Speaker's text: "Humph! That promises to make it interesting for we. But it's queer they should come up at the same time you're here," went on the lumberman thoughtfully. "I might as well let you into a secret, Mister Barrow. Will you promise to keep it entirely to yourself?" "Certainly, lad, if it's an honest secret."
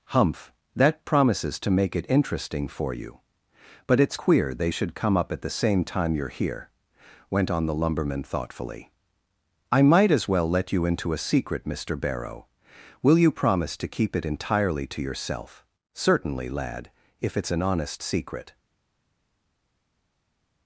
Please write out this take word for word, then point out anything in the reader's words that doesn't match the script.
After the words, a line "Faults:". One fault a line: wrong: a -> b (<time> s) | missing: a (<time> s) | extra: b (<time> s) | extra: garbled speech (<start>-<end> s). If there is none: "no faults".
"Humph! That promises to make it interesting for you. But it's queer they should come up at the same time you're here," went on the lumberman thoughtfully. "I might as well let you into a secret, Mister Barrow. Will you promise to keep it entirely to yourself?" "Certainly, lad, if it's an honest secret."
Faults:
wrong: we -> you (2.9 s)